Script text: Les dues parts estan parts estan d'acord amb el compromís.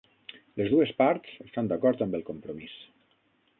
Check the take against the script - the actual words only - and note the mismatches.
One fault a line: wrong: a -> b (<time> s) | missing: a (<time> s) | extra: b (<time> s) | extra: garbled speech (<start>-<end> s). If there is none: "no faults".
missing: parts estan (1.7 s)